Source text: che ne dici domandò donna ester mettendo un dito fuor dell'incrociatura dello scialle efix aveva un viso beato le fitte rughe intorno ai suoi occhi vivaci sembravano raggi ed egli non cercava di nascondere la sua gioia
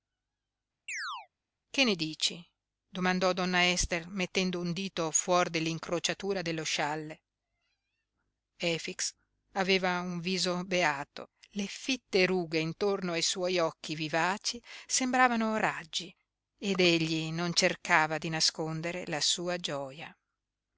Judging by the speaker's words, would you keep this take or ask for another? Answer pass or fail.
pass